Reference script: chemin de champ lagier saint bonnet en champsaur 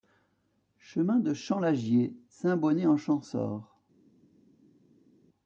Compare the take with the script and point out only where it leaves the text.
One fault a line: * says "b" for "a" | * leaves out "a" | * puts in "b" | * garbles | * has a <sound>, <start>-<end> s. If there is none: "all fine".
all fine